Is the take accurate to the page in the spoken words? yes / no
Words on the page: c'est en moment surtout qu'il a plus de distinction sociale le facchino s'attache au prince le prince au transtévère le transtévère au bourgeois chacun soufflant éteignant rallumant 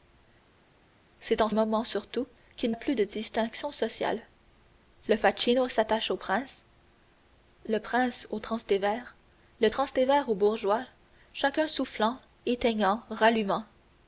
yes